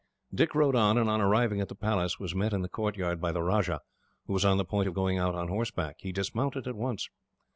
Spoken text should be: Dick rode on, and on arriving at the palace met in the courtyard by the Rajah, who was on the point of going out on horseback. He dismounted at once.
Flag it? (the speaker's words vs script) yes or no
yes